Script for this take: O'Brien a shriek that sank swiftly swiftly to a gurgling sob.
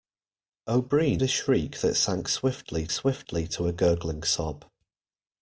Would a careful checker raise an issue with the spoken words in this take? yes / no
no